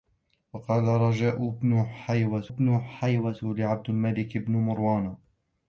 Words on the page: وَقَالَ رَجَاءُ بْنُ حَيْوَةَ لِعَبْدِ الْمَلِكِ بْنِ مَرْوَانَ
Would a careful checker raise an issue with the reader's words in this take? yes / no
yes